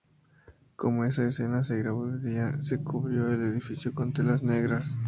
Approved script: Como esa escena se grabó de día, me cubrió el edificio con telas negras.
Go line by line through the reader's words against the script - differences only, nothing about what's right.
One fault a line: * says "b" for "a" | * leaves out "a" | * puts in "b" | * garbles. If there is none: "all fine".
* says "se" for "me"